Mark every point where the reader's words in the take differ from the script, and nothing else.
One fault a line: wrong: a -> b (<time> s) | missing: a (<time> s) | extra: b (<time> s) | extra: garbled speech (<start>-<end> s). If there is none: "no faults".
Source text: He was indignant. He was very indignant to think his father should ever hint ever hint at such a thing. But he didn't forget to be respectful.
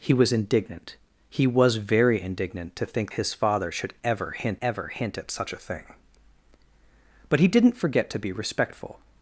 no faults